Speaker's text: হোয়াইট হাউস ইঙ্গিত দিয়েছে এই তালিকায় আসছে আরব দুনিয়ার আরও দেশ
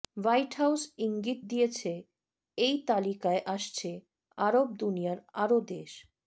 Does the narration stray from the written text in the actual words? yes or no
no